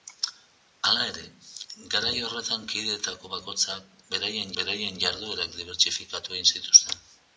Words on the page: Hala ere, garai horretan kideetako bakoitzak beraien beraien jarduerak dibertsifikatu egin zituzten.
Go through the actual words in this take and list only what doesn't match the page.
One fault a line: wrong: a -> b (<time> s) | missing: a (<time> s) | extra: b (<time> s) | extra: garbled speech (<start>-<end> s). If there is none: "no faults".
no faults